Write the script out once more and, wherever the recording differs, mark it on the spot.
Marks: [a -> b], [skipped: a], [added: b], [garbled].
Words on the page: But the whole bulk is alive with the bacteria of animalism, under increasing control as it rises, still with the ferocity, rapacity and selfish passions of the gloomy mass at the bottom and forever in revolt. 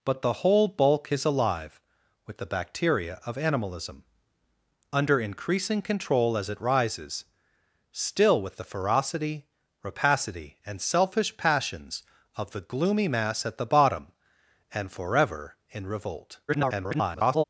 But the whole bulk is alive with the bacteria of animalism, under increasing control as it rises, still with the ferocity, rapacity and selfish passions of the gloomy mass at the bottom and forever in revolt. [garbled]